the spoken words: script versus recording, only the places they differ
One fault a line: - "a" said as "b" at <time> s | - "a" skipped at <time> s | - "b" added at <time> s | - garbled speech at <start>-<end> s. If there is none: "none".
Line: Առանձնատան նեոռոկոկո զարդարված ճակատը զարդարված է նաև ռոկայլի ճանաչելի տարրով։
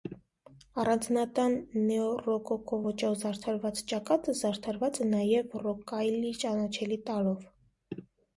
- "ոճով" added at 2.8 s